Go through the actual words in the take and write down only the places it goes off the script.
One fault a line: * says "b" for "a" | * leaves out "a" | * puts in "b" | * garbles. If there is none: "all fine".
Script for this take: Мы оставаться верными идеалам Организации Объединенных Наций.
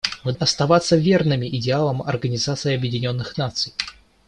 all fine